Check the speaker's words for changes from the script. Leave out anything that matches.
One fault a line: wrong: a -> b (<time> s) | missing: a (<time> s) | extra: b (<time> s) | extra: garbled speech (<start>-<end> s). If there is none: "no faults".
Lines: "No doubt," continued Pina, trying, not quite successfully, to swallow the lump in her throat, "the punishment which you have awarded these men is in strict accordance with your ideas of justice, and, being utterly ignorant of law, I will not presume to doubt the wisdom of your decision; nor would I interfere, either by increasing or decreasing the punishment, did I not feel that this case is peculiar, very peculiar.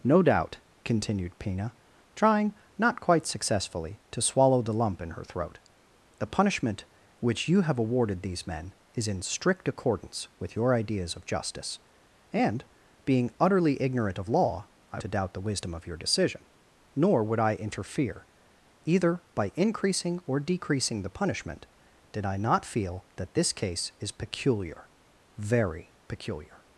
missing: will not presume (15.0 s)